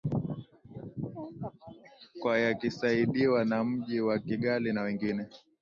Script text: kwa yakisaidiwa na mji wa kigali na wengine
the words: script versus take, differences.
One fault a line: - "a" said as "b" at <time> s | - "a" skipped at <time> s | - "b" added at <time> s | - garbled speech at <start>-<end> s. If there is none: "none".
none